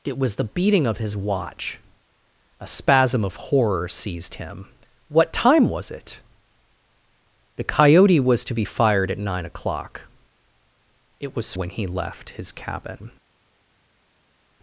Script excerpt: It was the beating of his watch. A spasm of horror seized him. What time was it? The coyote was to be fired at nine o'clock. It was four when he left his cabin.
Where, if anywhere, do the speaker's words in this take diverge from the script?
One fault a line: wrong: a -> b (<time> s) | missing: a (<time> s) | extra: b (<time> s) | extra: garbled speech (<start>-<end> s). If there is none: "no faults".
missing: four (11.5 s)